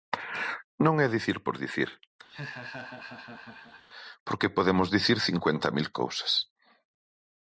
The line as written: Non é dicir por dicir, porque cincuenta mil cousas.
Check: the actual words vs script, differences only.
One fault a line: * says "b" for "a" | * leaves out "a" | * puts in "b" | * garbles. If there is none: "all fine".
* puts in "podemos dicir"